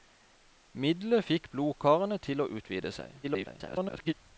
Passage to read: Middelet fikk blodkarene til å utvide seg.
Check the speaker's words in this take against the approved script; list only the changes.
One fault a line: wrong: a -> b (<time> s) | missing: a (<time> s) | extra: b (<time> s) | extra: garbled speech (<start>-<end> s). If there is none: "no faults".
extra: garbled speech (3.2-4.1 s)